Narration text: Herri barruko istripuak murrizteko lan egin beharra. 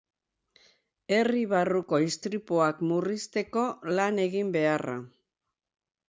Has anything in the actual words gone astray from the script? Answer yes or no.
no